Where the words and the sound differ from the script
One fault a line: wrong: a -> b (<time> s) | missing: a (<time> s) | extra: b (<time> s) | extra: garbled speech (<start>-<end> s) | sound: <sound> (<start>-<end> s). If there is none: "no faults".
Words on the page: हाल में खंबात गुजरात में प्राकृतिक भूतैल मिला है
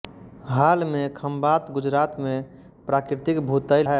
missing: मिला (3.9 s)